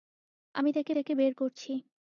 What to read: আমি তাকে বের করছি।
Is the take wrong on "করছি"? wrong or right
right